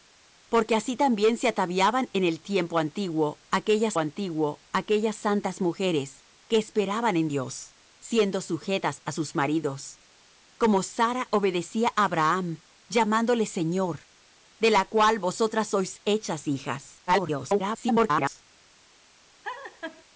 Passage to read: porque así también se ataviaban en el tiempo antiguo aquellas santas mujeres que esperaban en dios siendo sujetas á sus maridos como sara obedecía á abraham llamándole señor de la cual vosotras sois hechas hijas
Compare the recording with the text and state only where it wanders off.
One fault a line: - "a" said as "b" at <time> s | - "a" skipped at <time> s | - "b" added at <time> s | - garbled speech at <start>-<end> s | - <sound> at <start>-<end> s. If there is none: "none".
- "antiguo aquellas" added at 4.0 s
- garbled speech at 17.1-18.4 s
- laugh at 19.4-20.0 s